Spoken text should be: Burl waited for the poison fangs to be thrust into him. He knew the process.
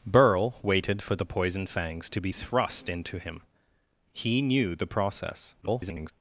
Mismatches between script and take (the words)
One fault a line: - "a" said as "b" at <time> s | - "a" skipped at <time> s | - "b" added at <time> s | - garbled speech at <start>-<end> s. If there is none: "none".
- garbled speech at 5.6-6.1 s